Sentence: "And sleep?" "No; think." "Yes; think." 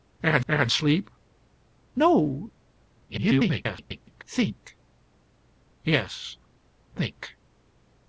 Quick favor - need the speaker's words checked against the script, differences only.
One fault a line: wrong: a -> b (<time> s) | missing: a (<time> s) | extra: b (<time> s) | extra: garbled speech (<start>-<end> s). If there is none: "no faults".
extra: and (0.5 s)
extra: garbled speech (2.9-4.2 s)